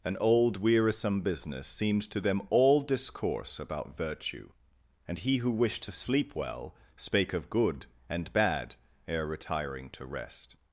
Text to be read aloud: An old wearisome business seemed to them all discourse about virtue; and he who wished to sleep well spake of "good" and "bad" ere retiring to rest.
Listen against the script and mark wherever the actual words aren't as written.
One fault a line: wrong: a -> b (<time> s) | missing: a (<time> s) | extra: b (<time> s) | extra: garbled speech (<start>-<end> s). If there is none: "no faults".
no faults